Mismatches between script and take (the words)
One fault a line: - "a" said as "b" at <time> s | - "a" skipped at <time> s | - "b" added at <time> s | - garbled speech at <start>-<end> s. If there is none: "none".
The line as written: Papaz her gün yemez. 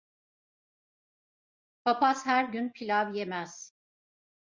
- "pilav" added at 2.7 s